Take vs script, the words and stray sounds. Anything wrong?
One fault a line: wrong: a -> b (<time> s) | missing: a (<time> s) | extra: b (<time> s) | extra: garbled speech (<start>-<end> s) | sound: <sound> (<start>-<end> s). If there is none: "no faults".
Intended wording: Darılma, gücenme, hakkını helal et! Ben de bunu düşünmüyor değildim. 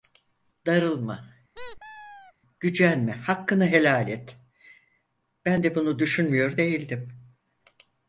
sound: squeak (1.5-2.3 s)